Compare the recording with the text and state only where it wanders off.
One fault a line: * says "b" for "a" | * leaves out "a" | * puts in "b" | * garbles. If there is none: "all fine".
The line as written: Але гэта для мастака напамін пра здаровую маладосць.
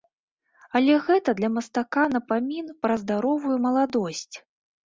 all fine